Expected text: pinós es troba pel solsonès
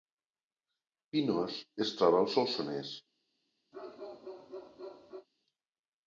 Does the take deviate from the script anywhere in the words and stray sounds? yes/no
yes